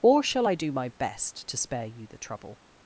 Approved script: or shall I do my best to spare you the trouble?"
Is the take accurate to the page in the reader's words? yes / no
yes